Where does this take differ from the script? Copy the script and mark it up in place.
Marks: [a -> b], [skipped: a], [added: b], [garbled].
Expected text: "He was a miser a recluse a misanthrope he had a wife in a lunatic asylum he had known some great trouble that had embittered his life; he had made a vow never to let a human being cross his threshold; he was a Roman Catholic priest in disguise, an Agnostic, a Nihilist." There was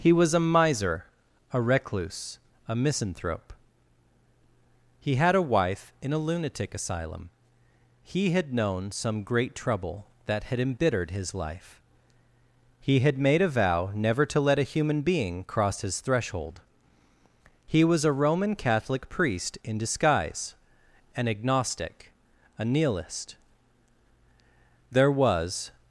"He was a miser a recluse a misanthrope he had a wife in a lunatic asylum he had known some great trouble that had embittered his life; he had made a vow never to let a human being cross his threshold; he was a Roman Catholic priest in disguise, an Agnostic, a Nihilist." There was